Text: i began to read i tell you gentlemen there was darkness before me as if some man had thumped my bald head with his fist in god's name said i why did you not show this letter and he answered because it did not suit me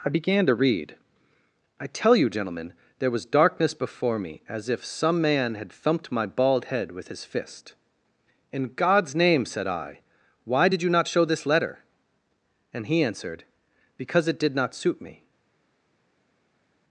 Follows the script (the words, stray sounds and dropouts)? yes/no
yes